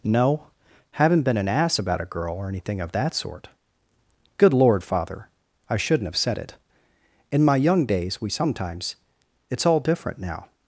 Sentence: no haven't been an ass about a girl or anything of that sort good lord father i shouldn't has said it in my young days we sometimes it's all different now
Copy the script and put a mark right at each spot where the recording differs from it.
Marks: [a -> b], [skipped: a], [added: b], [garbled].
no haven't been an ass about a girl or anything of that sort good lord father i shouldn't [has -> have] said it in my young days we sometimes it's all different now